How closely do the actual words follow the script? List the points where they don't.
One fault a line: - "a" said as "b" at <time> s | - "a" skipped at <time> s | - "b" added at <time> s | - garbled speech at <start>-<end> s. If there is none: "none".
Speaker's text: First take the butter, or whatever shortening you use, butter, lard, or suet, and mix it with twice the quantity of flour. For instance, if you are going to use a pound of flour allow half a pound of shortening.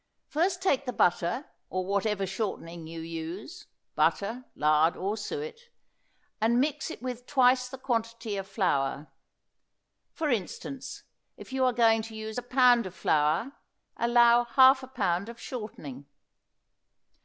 none